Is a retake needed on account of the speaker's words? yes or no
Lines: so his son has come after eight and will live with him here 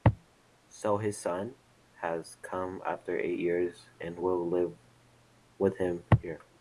yes